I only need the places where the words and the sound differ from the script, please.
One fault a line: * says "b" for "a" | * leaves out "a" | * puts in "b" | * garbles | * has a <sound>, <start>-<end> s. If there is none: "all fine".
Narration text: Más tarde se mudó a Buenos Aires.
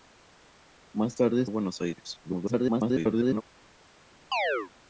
* leaves out "se mudó"
* garbles
* has a chirp, 4.3-4.7 s